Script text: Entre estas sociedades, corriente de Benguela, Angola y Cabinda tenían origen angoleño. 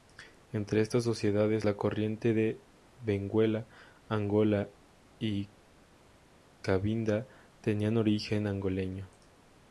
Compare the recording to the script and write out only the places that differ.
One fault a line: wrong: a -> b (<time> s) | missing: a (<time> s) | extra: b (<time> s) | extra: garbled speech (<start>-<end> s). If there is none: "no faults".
extra: la (1.6 s)